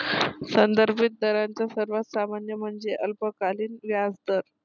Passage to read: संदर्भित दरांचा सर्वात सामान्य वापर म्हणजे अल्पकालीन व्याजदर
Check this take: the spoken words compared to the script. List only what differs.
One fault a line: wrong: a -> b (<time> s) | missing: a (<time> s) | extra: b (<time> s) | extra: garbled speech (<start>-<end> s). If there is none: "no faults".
missing: वापर (2.5 s)